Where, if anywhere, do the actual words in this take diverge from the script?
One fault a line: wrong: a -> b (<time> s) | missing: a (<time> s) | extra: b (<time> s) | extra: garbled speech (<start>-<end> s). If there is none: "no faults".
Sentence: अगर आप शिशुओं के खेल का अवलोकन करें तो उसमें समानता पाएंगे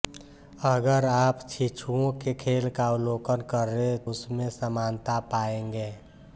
missing: तो (4.1 s)